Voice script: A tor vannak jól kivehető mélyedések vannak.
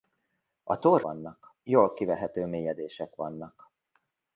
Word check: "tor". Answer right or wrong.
right